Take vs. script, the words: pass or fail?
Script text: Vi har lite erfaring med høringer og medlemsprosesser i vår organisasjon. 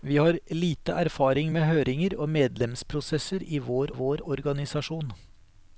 fail